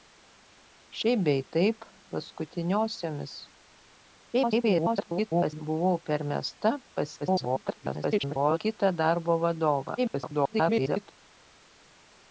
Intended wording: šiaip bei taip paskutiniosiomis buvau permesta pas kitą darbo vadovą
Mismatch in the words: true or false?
true